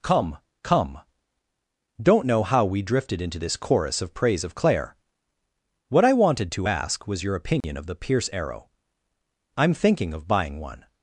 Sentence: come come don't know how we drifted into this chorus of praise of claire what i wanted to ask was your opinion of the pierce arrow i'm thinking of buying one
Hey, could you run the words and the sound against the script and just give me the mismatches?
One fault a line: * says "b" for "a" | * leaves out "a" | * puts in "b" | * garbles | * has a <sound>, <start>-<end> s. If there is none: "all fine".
* has a dropout, 7.6-7.6 s